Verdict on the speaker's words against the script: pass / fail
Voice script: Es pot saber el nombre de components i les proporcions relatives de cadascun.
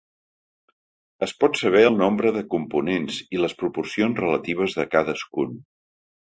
pass